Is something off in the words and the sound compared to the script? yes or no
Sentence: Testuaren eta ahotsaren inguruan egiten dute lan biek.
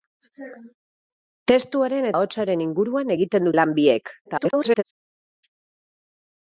yes